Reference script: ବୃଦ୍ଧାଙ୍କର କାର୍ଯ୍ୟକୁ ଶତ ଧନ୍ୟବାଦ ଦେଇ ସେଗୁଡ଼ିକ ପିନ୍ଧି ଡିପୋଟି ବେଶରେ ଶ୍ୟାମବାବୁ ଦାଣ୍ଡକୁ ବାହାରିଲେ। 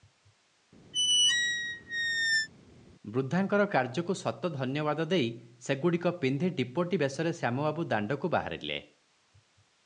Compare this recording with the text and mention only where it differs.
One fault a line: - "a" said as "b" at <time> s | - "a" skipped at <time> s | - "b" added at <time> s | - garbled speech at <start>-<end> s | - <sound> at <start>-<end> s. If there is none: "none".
- squeak at 0.9-2.5 s